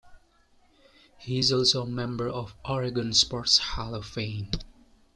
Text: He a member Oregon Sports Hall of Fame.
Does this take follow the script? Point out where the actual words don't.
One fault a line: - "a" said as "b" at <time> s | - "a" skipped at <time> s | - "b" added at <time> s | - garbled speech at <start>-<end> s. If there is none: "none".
- "is also" added at 1.4 s
- "of" added at 2.3 s